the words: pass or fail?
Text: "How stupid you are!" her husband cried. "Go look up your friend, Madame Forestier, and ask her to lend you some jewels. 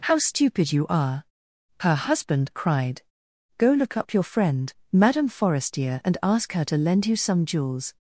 pass